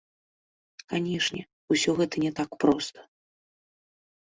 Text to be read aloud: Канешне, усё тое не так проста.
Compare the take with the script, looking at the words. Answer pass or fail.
fail